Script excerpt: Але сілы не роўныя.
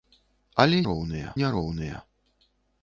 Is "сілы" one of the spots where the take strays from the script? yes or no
yes